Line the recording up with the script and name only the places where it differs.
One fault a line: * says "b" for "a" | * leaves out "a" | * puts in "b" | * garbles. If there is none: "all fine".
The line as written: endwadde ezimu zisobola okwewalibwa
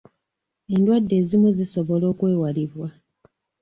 all fine